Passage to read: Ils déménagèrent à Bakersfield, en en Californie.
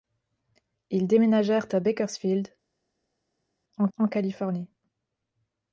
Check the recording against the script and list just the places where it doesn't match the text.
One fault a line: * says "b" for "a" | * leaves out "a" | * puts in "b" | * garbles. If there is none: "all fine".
all fine